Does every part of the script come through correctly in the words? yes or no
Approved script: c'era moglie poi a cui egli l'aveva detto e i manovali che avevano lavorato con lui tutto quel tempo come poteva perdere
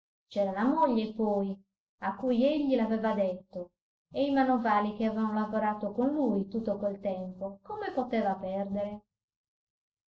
no